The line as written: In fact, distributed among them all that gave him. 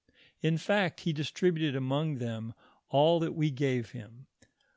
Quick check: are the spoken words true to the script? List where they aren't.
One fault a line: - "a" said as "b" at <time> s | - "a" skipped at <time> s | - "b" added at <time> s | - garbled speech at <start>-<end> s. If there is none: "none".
- "he" added at 1.0 s
- "we" added at 3.4 s